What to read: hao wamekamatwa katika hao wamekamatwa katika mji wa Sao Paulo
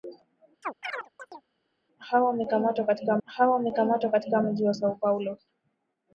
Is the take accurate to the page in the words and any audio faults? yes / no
no